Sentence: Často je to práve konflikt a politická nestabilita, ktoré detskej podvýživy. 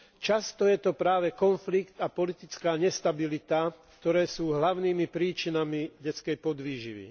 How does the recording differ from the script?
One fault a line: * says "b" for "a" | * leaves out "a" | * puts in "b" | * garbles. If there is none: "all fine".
* puts in "sú hlavnými príčinami"